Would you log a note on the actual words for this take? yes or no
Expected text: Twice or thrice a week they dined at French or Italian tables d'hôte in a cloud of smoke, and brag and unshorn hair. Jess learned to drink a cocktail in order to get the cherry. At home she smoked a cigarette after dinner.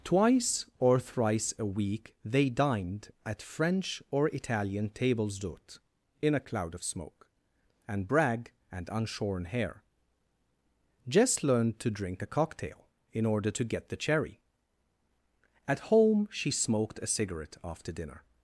no